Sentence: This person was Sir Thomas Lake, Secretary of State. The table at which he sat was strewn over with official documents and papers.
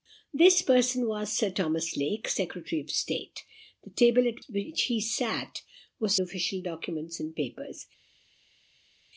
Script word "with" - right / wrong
wrong